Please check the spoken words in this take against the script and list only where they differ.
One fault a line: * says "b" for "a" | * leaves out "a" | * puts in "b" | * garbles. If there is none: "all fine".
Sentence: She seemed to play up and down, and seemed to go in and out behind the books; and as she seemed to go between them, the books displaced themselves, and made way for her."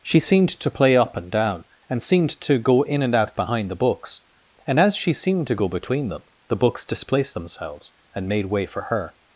all fine